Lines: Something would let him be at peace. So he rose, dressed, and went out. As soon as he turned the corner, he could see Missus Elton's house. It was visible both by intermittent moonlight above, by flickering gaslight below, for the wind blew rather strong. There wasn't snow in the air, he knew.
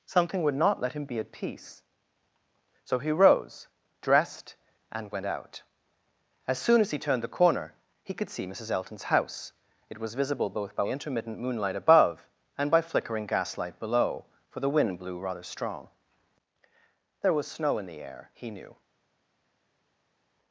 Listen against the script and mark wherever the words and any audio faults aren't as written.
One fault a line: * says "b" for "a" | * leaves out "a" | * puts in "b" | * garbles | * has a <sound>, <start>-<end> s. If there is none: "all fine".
* puts in "not"
* puts in "and"
* says "was" for "wasn't"